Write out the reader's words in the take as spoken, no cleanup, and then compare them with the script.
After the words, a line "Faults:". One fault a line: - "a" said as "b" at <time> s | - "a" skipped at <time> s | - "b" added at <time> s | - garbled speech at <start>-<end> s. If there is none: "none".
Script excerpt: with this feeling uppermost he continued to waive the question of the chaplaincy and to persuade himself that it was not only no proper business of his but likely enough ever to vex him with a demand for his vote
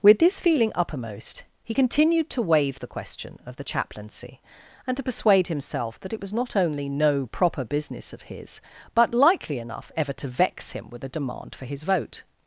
with this feeling uppermost he continued to waive the question of the chaplaincy and to persuade himself that it was not only no proper business of his but likely enough ever to vex him with a demand for his vote
Faults:
none